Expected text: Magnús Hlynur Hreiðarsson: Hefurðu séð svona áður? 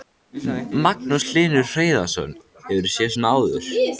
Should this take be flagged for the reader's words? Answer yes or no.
no